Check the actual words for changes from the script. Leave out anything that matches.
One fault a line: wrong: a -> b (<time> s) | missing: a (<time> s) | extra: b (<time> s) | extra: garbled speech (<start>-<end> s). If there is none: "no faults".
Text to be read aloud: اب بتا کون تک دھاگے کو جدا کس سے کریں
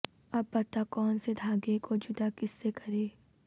wrong: تک -> سے (1.2 s)